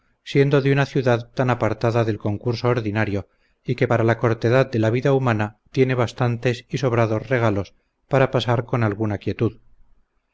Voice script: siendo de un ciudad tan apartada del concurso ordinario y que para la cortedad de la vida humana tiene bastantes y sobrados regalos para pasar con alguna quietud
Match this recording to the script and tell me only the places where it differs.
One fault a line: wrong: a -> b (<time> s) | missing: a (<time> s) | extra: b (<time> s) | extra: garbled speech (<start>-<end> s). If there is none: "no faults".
wrong: un -> una (0.7 s)